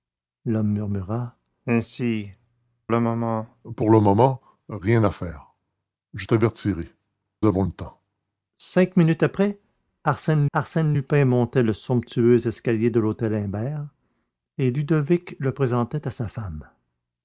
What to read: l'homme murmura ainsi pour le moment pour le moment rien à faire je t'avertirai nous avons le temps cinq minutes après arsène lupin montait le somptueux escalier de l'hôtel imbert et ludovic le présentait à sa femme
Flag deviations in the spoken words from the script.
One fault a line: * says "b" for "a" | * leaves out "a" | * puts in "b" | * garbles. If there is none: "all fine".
* leaves out "pour"
* leaves out "nous"
* puts in "arsène"